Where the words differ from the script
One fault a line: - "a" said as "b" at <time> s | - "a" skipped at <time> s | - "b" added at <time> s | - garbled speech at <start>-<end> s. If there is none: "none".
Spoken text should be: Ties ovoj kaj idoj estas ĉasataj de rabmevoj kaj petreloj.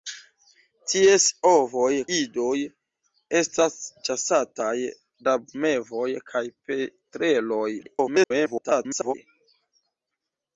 - "kaj" skipped at 1.9 s
- "de" skipped at 4.7 s
- garbled speech at 7.8-9.1 s